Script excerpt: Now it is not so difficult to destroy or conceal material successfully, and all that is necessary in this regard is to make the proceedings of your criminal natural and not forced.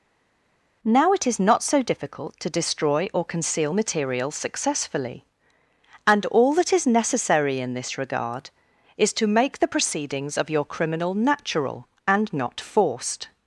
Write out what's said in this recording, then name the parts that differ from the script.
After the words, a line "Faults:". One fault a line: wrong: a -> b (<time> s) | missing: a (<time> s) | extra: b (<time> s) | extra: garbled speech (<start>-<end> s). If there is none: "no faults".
Now it is not so difficult to destroy or conceal material successfully, and all that is necessary in this regard is to make the proceedings of your criminal natural and not forced.
Faults:
no faults